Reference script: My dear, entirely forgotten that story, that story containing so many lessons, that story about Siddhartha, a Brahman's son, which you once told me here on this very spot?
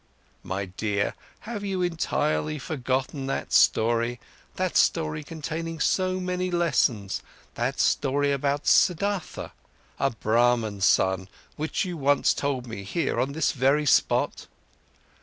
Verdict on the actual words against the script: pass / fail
fail